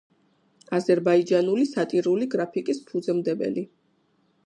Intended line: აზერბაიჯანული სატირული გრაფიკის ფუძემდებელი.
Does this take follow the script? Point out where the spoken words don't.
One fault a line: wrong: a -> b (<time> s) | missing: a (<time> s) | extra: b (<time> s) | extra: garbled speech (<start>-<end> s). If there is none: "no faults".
no faults